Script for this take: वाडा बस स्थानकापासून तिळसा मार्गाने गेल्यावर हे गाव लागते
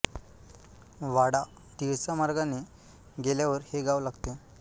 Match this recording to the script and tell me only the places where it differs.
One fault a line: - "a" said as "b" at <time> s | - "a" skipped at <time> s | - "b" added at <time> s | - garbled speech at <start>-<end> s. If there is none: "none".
- "बस स्थानकापासून" skipped at 1.4 s